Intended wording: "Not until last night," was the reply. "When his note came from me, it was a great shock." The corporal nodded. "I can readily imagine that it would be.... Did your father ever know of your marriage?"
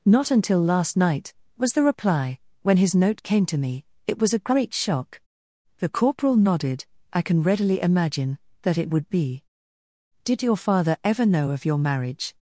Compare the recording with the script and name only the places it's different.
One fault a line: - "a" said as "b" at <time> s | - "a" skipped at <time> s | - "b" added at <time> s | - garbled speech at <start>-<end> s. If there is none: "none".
- "from" said as "to" at 3.5 s